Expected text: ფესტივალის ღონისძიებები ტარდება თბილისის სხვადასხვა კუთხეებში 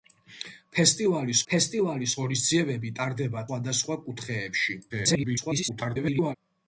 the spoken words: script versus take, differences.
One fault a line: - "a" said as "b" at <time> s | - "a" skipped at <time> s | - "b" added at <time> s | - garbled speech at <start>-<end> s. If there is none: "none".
- "ფესტივალის" added at 1.5 s
- "თბილისის" skipped at 3.4 s
- garbled speech at 4.9-6.4 s